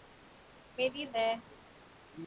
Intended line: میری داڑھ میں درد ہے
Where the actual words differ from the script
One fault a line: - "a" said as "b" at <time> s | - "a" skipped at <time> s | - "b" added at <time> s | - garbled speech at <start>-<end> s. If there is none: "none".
- "داڑھ میں درد" skipped at 1.0 s